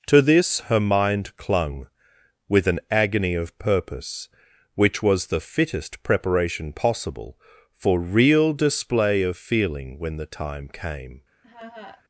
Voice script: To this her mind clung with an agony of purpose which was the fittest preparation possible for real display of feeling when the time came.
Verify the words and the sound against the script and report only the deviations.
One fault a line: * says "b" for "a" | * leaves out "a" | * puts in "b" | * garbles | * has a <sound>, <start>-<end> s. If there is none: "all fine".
* has a laugh, 11.4-12.0 s